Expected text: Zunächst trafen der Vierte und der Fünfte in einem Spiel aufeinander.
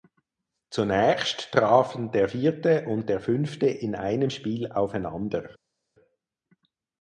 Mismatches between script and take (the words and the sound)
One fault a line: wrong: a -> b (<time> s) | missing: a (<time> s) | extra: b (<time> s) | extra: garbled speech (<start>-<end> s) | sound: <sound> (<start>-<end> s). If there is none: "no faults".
no faults